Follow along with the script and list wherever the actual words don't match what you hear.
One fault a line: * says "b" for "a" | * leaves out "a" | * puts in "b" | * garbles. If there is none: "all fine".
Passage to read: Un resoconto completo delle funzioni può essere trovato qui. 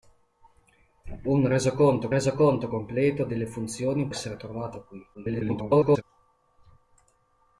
* puts in "resoconto"
* leaves out "può"
* garbles